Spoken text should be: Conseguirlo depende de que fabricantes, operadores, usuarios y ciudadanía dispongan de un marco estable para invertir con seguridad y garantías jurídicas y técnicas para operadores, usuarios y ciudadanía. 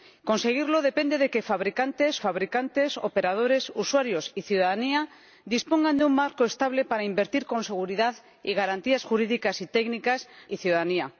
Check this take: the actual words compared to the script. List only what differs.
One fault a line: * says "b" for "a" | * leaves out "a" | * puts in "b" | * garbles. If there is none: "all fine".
* puts in "fabricantes"
* leaves out "para operadores usuarios"